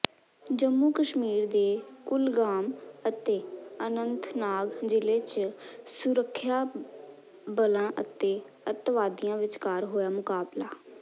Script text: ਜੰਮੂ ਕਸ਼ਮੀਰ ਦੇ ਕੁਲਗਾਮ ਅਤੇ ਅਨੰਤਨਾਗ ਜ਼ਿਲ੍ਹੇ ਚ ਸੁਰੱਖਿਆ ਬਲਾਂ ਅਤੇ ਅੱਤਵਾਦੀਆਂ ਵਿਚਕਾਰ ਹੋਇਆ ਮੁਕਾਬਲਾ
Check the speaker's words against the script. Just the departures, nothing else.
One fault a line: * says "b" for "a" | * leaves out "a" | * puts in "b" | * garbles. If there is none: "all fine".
all fine